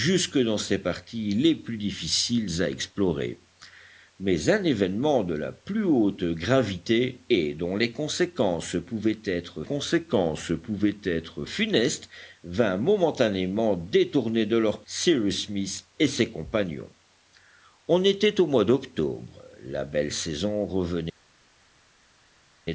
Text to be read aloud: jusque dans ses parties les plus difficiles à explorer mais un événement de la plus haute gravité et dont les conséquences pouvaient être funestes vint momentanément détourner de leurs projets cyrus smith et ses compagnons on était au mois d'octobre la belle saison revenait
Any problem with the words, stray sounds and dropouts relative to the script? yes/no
yes